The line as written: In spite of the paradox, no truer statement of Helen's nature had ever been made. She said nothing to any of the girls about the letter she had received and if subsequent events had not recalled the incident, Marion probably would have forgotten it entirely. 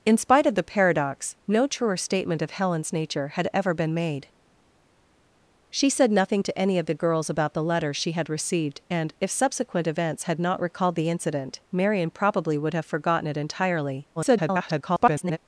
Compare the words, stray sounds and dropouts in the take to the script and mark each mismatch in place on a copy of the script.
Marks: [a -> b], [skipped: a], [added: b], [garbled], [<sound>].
In spite of the paradox, no truer statement of Helen's nature had ever been made. She said nothing to any of the girls about the letter she had received and if subsequent events had not recalled the incident, Marion probably would have forgotten it entirely. [garbled]